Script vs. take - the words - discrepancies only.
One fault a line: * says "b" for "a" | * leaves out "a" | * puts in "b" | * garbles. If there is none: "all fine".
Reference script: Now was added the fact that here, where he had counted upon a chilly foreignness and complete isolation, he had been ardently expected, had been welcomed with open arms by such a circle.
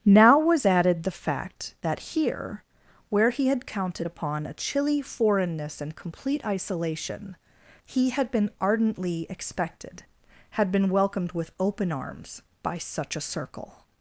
all fine